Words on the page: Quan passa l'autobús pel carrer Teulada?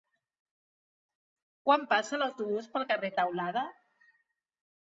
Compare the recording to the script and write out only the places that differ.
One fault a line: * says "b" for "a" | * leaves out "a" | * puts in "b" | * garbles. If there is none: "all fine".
all fine